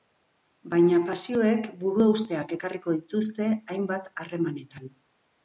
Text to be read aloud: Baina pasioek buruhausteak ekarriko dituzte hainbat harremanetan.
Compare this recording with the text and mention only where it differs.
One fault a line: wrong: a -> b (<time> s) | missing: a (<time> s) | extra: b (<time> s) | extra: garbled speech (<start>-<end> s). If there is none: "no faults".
no faults